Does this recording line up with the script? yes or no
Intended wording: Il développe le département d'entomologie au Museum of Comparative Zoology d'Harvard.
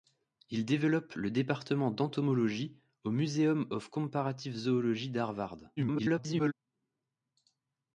no